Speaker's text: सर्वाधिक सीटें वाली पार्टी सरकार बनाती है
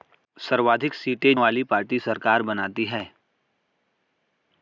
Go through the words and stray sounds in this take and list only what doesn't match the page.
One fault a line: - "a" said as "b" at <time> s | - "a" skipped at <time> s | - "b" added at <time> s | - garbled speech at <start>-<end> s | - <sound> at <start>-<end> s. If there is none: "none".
none